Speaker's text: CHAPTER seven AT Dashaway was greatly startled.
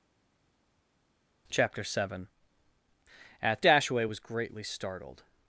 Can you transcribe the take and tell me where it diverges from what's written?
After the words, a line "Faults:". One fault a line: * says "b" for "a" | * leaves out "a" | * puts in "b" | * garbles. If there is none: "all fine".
CHAPTER seven AT Dashaway was greatly startled.
Faults:
all fine